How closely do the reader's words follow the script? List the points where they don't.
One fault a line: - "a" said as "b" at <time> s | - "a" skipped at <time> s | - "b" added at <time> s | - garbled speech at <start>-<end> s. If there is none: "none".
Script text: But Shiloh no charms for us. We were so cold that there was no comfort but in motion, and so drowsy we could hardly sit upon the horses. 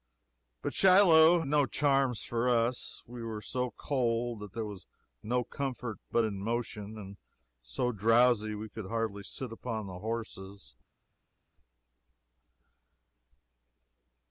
none